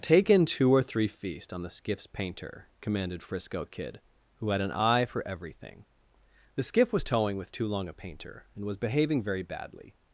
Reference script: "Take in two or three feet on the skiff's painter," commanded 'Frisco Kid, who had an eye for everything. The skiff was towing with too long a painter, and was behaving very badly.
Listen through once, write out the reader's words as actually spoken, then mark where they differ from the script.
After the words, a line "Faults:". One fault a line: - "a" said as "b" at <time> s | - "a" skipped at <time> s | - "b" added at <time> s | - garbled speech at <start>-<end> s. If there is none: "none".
"Take in two or three feast on the skiff's painter," commanded 'Frisco Kid, who had an eye for everything. The skiff was towing with too long a painter, and was behaving very badly.
Faults:
- "feet" said as "feast" at 1.1 s